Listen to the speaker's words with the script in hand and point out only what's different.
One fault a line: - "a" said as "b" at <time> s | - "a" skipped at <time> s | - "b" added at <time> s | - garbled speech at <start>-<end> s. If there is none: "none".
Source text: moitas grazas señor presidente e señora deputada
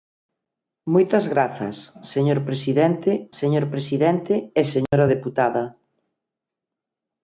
- "señor presidente" added at 3.4 s